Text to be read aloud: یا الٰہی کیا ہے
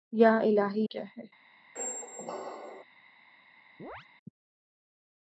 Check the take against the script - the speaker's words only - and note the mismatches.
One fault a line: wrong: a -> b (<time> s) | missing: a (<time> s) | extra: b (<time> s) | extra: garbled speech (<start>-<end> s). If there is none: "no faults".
no faults